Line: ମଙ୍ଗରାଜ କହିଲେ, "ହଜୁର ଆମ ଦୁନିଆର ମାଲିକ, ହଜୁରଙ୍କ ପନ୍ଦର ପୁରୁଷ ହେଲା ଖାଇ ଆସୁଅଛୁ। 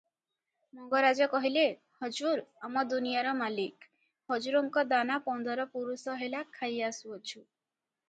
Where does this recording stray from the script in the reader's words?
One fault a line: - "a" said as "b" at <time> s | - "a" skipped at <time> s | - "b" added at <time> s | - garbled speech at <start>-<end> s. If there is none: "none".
- "ଦାନା" added at 4.9 s